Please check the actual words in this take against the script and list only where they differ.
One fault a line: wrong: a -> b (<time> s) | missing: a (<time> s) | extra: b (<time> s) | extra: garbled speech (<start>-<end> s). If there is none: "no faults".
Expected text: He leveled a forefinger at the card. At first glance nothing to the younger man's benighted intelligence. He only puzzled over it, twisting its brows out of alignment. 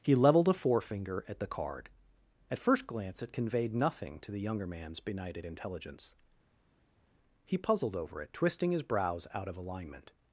extra: it conveyed (3.2 s)
missing: only (7.6 s)
wrong: its -> his (8.7 s)